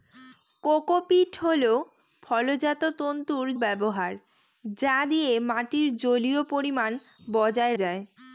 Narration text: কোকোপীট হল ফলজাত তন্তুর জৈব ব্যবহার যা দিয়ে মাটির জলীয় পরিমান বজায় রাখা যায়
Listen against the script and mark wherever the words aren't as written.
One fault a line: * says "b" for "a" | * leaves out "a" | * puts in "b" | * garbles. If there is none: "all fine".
* leaves out "জৈব"
* leaves out "রাখা"